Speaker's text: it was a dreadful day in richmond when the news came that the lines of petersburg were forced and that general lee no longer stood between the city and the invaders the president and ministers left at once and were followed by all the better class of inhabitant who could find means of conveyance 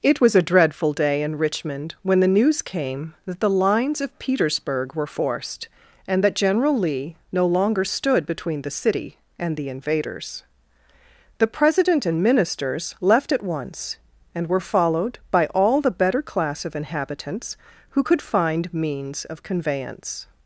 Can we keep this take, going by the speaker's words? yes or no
no